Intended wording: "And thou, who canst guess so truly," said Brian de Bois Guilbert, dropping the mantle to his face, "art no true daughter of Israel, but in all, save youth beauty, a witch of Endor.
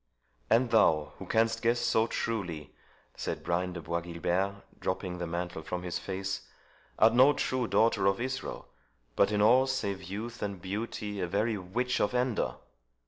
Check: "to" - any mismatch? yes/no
yes